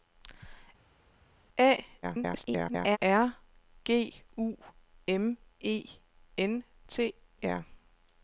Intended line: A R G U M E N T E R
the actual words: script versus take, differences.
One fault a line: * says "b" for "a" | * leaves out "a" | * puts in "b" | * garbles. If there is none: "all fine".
* garbles
* leaves out "E"